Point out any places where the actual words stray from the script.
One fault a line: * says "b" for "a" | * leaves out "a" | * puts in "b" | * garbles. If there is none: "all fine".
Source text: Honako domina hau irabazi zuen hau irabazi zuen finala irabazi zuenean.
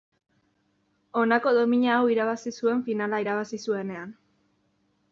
* leaves out "hau irabazi zuen"